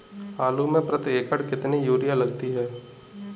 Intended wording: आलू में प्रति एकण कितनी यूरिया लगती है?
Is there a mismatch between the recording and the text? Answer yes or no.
no